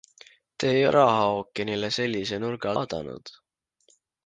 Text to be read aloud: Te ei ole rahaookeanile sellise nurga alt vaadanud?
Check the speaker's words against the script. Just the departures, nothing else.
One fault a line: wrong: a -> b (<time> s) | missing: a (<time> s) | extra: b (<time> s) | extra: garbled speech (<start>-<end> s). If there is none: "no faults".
missing: ole (0.9 s)
missing: alt (2.7 s)